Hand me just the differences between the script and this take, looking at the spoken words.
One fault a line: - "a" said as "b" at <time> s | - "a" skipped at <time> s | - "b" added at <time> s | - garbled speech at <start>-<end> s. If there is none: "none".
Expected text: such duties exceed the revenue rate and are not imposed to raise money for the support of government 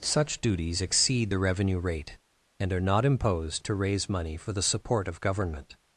none